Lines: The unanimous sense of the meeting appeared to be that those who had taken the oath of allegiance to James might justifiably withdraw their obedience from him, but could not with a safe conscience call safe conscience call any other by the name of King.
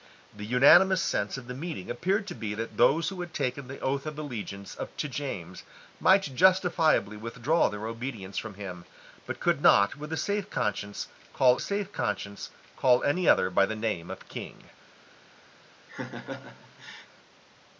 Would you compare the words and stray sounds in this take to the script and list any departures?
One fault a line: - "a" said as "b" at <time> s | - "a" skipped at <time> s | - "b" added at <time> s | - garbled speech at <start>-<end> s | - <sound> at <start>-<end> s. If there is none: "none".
- laugh at 15.9-17.1 s